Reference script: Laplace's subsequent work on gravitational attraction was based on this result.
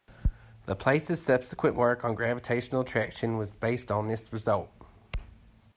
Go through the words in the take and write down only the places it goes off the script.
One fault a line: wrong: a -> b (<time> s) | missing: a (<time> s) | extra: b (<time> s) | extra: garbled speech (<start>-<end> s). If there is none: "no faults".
no faults